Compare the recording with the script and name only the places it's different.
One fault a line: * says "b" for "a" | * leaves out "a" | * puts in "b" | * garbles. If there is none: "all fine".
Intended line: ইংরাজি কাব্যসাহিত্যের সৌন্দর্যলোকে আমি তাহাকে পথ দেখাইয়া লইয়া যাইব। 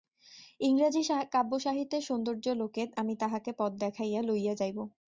all fine